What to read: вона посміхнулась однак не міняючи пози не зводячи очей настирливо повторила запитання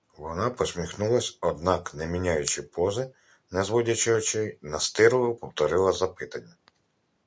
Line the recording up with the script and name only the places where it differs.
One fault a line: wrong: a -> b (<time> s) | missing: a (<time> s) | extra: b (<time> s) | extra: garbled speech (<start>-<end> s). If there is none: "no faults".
no faults